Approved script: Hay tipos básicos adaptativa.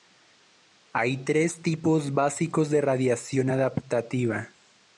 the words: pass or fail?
fail